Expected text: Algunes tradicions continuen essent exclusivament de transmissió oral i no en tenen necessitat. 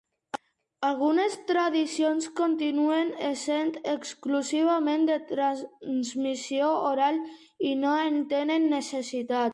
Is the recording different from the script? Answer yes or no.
no